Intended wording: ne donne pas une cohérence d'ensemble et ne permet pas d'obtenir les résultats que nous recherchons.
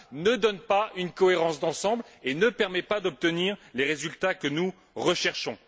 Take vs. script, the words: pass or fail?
pass